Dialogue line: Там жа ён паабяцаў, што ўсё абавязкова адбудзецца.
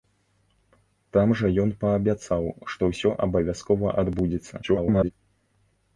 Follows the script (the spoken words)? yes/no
no